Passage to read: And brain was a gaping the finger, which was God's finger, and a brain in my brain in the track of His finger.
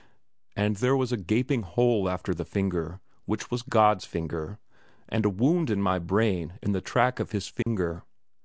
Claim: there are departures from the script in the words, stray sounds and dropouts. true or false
true